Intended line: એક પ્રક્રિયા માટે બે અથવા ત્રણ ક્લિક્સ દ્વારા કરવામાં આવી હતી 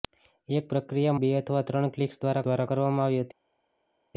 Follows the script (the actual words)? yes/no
no